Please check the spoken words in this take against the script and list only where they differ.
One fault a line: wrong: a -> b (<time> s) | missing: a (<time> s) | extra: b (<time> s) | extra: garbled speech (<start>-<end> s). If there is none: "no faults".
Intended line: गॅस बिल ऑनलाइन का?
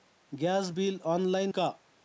no faults